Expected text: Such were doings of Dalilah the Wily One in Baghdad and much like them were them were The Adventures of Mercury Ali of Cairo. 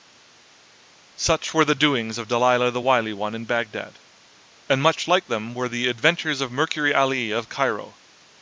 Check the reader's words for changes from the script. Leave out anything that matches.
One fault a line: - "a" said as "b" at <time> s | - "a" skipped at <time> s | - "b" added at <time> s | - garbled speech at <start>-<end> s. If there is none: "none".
- "the" added at 1.6 s
- "them were" skipped at 5.7 s